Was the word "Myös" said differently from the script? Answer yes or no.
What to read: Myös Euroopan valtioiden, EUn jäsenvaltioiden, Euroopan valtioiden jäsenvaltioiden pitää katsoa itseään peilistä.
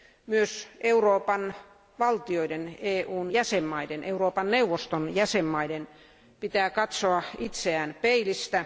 no